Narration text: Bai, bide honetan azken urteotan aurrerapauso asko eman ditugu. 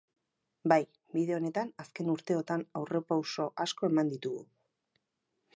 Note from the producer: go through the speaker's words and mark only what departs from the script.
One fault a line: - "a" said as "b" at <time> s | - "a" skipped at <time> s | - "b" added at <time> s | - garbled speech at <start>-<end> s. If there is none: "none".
none